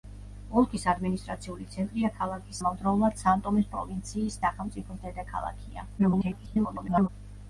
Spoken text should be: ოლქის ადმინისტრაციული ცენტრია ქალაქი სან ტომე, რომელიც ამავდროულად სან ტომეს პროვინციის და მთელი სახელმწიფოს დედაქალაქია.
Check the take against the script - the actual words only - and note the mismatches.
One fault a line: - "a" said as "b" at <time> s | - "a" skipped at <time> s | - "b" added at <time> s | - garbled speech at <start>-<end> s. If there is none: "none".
- "სან ტომე რომელიც" skipped at 2.6 s
- "და მთელი" skipped at 4.4 s
- garbled speech at 6.0-7.1 s